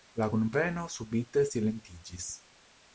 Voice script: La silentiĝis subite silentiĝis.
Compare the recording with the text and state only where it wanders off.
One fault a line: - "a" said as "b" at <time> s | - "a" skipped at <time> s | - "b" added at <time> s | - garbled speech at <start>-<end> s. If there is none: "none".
- "silentiĝis" said as "kunveno" at 0.3 s